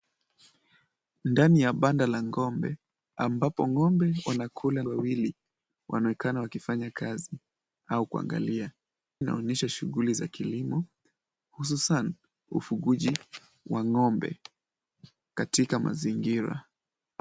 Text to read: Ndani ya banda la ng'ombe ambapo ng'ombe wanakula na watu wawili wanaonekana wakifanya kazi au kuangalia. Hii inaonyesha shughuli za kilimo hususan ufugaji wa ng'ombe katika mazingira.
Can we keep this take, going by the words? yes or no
no